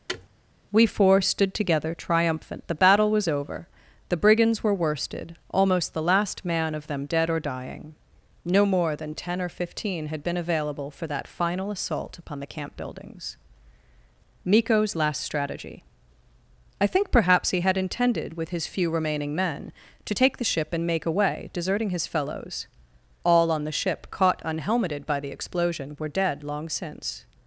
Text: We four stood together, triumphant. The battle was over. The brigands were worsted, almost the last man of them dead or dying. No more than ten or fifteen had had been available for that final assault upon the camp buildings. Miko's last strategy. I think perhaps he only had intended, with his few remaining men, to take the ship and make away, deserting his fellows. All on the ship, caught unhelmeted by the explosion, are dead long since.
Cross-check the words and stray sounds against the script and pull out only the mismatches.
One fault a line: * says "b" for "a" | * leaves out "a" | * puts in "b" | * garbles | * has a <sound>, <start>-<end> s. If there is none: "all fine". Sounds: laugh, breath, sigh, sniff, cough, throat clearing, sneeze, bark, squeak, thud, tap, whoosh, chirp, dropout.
* has a thud, 0.1-0.3 s
* leaves out "had"
* leaves out "only"
* says "were" for "are"